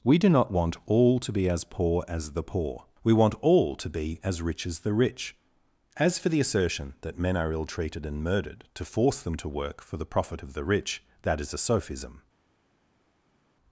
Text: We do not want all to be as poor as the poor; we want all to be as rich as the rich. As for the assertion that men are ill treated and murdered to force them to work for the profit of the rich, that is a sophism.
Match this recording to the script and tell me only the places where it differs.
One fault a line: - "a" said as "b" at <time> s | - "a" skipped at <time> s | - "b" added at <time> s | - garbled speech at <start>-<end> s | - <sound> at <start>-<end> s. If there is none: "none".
none